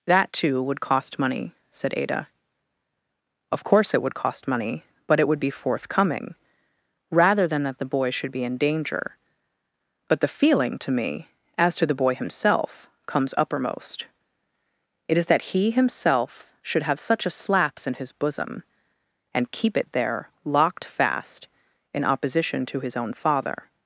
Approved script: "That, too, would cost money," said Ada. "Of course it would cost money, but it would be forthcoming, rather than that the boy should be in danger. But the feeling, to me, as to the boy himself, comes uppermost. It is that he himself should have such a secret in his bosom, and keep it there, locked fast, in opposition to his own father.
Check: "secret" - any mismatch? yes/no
yes